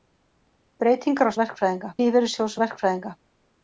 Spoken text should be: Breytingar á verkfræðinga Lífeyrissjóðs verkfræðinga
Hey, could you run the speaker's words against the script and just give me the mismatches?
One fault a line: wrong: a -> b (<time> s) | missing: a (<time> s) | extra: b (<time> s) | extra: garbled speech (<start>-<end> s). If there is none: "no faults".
no faults